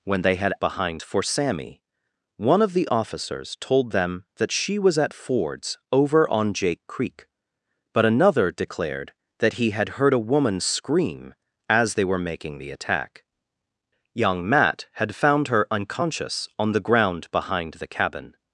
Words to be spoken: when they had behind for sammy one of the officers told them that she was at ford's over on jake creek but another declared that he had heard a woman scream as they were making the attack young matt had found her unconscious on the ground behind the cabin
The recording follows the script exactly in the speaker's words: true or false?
true